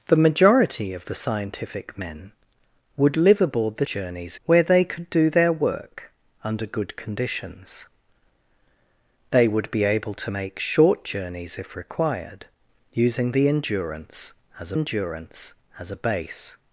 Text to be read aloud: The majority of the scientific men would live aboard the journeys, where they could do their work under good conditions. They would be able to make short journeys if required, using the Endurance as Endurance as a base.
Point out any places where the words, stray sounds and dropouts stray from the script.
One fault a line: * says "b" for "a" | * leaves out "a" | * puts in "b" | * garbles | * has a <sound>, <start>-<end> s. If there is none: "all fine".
all fine